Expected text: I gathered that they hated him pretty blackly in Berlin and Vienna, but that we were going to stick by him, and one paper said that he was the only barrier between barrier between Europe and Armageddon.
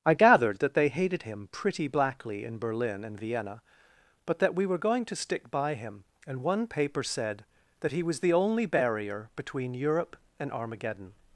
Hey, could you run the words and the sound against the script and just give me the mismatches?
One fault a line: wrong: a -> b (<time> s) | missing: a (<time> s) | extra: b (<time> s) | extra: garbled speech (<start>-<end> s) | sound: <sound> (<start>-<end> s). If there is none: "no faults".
missing: barrier between (9.7 s)